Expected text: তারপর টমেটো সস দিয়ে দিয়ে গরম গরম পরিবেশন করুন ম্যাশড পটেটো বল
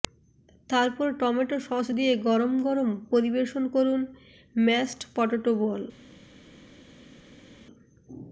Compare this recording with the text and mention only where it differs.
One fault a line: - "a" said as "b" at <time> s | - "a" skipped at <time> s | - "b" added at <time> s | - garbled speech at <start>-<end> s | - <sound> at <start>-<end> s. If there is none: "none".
- "দিয়ে" skipped at 2.1 s